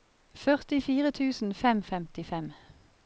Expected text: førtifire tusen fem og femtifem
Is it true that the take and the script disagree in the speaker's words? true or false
false